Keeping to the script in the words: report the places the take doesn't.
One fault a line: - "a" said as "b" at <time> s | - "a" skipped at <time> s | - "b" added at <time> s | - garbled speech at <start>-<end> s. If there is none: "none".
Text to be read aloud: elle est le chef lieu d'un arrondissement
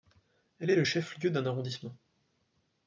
none